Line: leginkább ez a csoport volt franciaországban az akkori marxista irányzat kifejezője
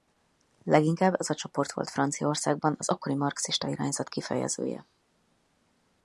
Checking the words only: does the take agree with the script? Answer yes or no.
yes